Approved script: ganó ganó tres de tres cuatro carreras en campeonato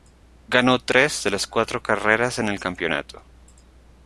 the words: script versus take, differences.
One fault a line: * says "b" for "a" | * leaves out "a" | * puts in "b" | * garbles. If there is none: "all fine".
* leaves out "ganó"
* says "las" for "tres"
* puts in "el"